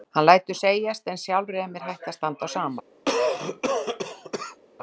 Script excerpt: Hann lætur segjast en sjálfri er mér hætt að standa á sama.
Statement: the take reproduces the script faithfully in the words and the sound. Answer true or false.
false